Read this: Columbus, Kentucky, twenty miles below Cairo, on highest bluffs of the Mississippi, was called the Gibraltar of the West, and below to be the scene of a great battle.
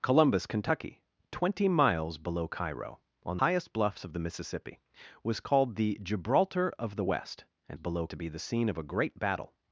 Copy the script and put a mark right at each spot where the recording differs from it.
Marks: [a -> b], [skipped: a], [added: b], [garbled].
Columbus, Kentucky, twenty miles below Cairo, on highest bluffs of the Mississippi, was called the Gibraltar of the West, and below to be the scene of a great battle.